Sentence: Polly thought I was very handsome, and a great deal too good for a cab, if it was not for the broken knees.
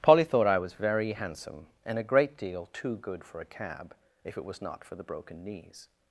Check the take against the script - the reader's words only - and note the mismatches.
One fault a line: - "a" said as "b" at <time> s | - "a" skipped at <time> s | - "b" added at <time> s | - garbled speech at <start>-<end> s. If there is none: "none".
none